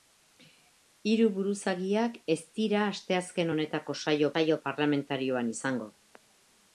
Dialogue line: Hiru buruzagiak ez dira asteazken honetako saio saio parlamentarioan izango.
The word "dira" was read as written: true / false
true